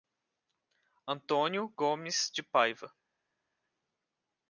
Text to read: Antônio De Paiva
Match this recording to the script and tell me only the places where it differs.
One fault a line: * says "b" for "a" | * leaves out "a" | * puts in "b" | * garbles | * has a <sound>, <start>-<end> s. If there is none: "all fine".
* puts in "Gomes"